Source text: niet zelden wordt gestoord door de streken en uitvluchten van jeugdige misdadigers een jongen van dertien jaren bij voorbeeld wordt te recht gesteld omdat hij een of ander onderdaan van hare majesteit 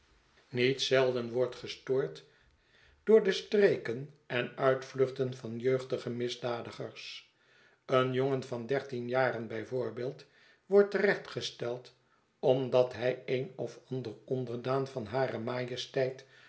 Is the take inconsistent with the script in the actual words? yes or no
no